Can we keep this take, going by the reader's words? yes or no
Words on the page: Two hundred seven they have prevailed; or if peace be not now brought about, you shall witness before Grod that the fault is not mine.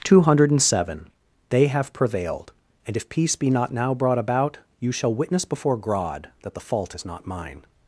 no